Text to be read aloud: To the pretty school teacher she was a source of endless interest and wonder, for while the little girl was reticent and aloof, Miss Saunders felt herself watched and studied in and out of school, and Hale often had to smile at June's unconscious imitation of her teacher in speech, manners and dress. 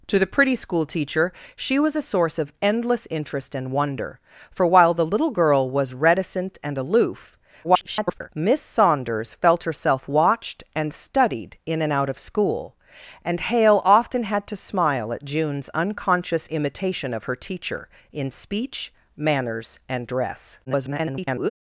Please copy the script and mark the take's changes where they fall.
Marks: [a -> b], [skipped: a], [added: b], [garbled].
To the pretty school teacher she was a source of endless interest and wonder, for while the little girl was reticent and aloof, [garbled] Miss Saunders felt herself watched and studied in and out of school, and Hale often had to smile at June's unconscious imitation of her teacher in speech, manners and dress. [garbled]